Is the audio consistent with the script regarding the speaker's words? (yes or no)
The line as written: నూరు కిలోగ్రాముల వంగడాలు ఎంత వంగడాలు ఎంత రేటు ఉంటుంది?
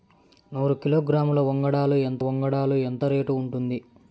yes